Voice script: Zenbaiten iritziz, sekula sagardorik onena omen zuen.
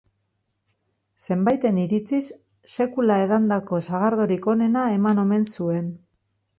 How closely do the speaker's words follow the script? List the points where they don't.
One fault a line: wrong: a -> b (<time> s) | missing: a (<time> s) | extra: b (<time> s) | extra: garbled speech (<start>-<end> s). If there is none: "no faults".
extra: edandako (3.3 s)
extra: eman (5.0 s)